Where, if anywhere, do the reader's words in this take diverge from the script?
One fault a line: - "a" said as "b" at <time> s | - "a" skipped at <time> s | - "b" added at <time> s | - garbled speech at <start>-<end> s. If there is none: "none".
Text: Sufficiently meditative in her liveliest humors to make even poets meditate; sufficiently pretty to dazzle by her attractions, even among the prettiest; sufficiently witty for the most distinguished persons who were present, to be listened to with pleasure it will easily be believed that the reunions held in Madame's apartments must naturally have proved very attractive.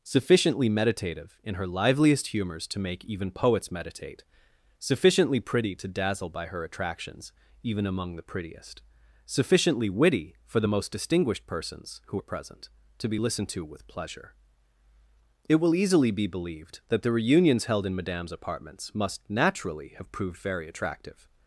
none